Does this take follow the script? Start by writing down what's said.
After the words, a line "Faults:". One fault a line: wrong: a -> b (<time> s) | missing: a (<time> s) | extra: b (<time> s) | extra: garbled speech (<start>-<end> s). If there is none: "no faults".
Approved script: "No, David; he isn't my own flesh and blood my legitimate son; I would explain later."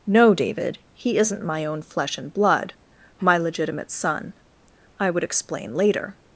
"No, David; he isn't my own flesh and blood my legitimate son; I would explain later."
Faults:
no faults